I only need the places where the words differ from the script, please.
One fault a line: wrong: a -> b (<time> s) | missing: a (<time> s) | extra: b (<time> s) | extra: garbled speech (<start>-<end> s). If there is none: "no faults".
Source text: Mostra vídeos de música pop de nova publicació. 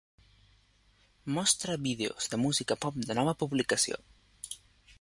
no faults